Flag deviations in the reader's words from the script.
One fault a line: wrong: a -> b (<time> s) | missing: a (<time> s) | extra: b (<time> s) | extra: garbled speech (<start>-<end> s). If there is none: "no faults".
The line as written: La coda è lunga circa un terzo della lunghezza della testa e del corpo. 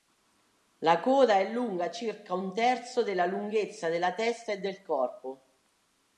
no faults